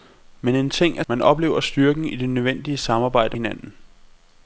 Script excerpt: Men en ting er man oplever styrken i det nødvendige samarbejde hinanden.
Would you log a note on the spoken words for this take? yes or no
no